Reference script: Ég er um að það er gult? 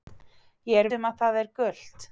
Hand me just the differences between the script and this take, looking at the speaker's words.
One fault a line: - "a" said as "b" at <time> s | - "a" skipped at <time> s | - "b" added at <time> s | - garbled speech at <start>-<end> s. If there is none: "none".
none